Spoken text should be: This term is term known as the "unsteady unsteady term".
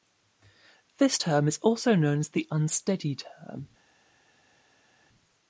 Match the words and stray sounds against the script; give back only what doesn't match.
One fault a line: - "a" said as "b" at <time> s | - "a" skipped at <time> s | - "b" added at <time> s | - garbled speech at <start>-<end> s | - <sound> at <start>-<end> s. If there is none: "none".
- "term" said as "also" at 1.6 s
- "unsteady" skipped at 3.1 s